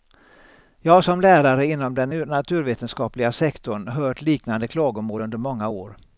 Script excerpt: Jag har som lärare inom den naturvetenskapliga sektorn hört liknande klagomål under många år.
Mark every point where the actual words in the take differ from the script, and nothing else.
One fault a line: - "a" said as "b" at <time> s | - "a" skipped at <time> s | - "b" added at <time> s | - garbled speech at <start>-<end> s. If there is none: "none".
none